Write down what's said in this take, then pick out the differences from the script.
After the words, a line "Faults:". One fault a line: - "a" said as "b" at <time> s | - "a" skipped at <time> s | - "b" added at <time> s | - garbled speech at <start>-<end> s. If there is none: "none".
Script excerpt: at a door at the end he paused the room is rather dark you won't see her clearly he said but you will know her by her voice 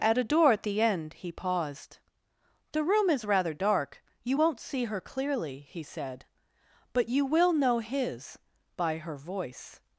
at a door at the end he paused the room is rather dark you won't see her clearly he said but you will know his by her voice
Faults:
- "her" said as "his" at 7.8 s